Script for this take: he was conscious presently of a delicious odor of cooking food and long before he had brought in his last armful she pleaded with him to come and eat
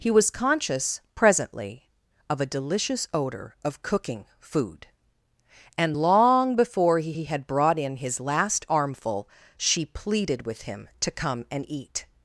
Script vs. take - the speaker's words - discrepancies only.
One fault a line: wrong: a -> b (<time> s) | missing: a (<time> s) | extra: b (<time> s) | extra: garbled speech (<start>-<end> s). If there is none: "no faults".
extra: he (7.1 s)